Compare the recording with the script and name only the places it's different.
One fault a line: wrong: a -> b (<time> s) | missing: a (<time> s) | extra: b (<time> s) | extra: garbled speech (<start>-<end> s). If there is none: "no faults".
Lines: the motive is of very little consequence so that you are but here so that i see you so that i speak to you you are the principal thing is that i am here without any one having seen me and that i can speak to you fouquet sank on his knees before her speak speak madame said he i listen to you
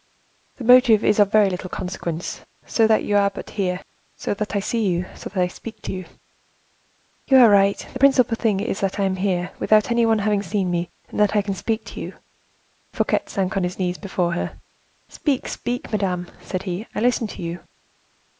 extra: right (7.5 s)